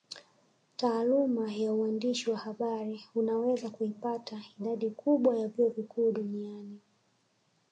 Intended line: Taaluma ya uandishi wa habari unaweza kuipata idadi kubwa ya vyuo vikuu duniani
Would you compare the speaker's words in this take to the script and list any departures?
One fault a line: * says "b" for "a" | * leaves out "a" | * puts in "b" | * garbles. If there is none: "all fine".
all fine